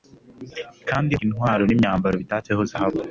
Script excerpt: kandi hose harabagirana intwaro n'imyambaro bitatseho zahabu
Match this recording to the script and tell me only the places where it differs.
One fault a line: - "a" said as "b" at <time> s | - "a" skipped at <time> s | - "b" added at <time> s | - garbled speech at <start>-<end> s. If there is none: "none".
- "hose harabagirana" skipped at 1.1 s